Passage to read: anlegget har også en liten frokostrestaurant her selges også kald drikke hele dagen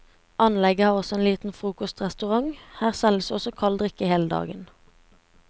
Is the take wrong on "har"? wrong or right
right